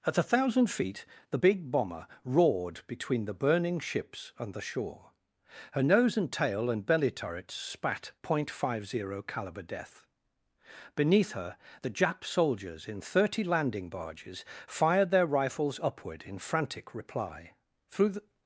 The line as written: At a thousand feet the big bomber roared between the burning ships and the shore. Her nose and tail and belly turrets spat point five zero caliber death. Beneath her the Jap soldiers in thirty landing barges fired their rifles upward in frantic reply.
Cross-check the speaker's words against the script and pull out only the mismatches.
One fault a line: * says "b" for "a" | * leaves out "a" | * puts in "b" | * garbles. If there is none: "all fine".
* puts in "Through the"